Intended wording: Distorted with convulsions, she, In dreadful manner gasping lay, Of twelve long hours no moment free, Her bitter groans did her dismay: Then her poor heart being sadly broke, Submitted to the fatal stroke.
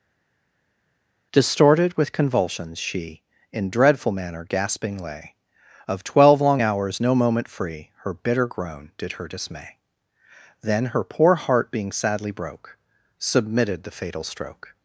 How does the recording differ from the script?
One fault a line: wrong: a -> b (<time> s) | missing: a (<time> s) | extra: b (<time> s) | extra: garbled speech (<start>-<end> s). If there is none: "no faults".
wrong: groans -> groan (8.5 s)
missing: to (13.8 s)